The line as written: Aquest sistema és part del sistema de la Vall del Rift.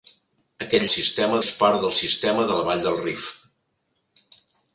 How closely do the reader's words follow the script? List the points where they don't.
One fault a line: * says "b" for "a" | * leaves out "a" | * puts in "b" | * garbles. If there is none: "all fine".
all fine